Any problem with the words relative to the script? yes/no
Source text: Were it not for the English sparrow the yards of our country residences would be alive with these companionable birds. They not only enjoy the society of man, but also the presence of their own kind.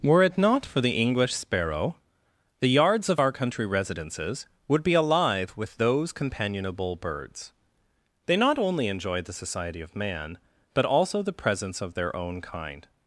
yes